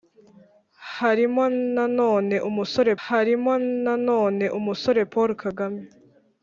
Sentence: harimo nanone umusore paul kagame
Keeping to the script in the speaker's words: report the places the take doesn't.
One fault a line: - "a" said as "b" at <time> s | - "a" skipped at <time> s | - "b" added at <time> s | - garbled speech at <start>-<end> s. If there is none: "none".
- "harimo nanone umusore" added at 3.0 s